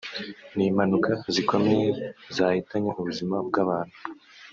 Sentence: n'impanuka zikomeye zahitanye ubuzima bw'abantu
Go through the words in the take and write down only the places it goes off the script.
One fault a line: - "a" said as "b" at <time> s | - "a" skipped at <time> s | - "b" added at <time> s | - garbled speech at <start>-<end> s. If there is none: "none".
none